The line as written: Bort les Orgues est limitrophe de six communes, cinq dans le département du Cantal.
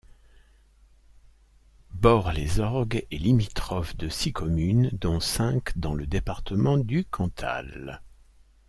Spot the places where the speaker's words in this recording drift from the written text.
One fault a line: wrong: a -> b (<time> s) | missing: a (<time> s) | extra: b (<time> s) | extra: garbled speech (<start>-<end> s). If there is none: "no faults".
extra: dont (4.9 s)